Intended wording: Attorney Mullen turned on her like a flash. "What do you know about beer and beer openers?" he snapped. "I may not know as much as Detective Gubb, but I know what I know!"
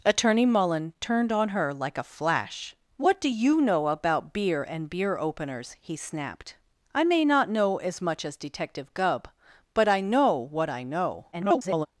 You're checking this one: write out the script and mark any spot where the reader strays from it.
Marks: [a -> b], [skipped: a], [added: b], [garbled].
Attorney Mullen turned on her like a flash. "What do you know about beer and beer openers?" he snapped. "I may not know as much as Detective Gubb, but I know what I know!" [garbled]